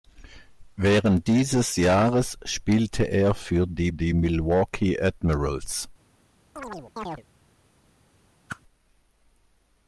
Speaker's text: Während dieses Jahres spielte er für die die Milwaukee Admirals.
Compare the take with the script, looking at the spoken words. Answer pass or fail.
pass